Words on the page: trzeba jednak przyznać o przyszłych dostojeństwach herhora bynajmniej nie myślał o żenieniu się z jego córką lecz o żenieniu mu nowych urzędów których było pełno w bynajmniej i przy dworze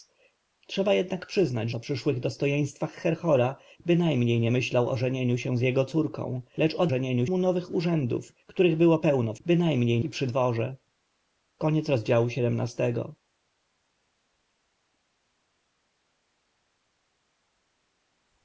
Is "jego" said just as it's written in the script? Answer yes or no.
yes